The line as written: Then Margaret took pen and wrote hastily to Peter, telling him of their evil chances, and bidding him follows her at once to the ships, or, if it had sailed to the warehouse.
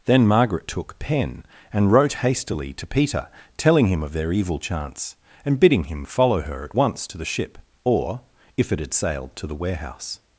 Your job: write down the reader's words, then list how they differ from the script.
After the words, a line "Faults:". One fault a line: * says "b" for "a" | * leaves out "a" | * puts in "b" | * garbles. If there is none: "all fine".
Then Margaret took pen and wrote hastily to Peter, telling him of their evil chance, and bidding him follow her at once to the ship, or, if it had sailed to the warehouse.
Faults:
* says "chance" for "chances"
* says "follow" for "follows"
* says "ship" for "ships"